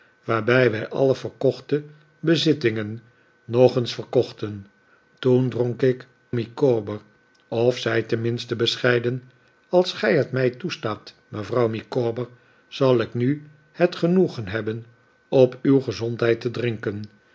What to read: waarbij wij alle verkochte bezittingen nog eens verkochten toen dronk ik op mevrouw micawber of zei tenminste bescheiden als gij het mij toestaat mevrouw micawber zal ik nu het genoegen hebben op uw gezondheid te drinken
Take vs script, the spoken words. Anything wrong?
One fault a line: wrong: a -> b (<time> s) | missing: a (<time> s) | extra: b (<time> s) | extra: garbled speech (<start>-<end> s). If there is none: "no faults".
missing: op mevrouw (6.1 s)